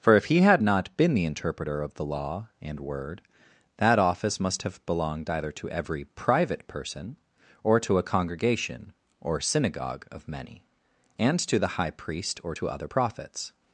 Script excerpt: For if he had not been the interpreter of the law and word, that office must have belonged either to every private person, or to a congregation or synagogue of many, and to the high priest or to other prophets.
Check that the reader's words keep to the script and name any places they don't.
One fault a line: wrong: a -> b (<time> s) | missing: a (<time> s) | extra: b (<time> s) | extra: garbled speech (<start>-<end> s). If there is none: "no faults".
no faults